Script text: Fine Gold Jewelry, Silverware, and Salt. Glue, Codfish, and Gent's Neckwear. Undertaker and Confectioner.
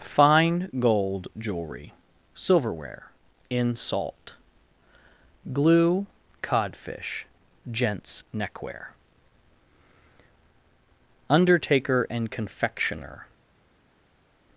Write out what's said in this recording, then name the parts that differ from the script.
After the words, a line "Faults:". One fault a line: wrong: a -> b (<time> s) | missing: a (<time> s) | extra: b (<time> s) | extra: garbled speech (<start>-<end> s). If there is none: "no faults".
Fine Gold Jewelry, Silverware, in Salt. Glue, Codfish, Gent's Neckwear. Undertaker and Confectioner.
Faults:
wrong: and -> in (3.5 s)
missing: and (7.3 s)